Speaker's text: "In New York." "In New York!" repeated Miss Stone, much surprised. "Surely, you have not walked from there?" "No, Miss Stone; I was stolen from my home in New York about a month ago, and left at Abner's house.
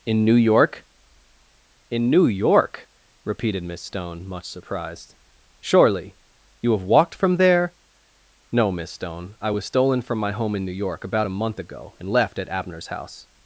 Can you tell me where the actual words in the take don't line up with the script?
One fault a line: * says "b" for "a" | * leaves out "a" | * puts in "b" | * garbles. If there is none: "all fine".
* leaves out "not"